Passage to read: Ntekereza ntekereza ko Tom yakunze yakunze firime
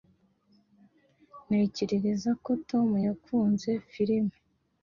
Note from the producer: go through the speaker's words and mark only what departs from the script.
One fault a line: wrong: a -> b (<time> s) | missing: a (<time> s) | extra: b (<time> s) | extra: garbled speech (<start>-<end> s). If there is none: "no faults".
missing: ntekereza (2.3 s)
missing: yakunze (3.7 s)